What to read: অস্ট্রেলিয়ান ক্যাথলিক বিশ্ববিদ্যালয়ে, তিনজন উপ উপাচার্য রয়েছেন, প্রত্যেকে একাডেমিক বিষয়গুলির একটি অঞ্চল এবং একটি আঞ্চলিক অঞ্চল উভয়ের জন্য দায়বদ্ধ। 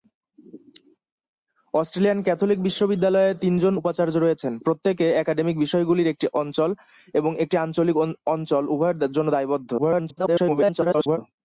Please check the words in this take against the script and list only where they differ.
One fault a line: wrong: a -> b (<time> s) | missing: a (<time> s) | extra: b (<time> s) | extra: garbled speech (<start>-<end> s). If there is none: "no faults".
missing: উপ (3.7 s)
extra: garbled speech (9.8-11.2 s)